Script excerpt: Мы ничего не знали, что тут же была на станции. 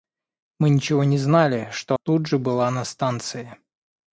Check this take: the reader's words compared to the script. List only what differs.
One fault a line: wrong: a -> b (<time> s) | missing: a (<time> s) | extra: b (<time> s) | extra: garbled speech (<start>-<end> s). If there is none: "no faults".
no faults